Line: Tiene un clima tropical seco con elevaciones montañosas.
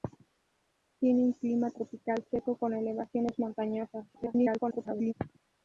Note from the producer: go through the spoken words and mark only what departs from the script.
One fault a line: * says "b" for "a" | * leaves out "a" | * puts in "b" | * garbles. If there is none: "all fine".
* garbles